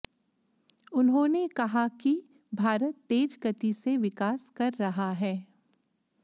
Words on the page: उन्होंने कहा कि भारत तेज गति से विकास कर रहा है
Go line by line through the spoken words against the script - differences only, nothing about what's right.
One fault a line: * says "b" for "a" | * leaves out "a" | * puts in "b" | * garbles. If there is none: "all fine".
all fine